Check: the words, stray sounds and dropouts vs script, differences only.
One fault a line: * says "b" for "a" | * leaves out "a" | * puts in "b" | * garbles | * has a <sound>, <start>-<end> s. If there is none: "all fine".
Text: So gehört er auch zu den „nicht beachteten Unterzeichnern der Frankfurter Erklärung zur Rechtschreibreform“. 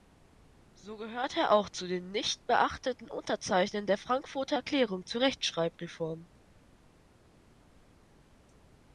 all fine